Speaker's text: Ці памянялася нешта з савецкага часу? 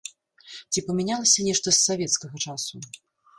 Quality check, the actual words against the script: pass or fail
pass